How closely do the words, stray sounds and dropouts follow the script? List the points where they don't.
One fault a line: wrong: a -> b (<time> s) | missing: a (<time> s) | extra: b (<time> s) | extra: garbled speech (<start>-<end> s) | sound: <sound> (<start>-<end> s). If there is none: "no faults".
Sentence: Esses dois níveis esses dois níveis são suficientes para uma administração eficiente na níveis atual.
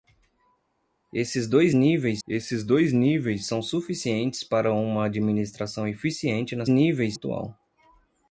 no faults